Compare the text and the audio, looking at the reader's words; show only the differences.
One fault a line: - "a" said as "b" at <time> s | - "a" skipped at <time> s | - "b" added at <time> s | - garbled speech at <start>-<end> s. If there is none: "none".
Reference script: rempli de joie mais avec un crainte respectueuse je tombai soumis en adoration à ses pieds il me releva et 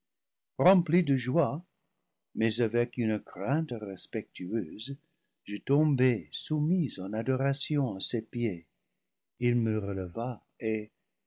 - "un" said as "une" at 3.0 s